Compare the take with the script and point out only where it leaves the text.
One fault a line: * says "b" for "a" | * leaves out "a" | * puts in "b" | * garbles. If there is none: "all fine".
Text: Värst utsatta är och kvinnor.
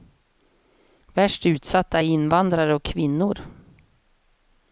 * puts in "invandrare"